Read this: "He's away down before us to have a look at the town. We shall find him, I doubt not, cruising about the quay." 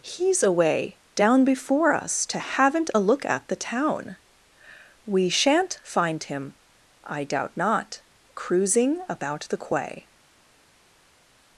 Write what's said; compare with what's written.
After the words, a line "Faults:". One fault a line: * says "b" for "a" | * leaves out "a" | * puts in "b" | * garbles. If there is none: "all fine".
"He's away down before us to haven't a look at the town. We shan't find him, I doubt not, cruising about the quay."
Faults:
* says "haven't" for "have"
* says "shan't" for "shall"